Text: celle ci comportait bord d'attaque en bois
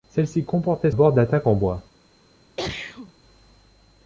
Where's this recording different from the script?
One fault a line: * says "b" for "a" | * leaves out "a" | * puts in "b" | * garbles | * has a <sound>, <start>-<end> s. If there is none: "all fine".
* has a sneeze, 2.6-3.1 s